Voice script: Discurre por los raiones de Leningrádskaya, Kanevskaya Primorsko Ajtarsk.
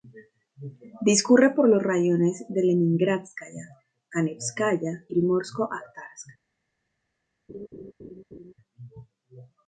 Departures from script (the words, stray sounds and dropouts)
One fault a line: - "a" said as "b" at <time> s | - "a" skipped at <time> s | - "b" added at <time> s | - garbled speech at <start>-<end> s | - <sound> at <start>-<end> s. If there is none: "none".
- laugh at 7.5-8.5 s